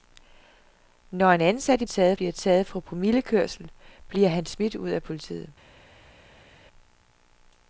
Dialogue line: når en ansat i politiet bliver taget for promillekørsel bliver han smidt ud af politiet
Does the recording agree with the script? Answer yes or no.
no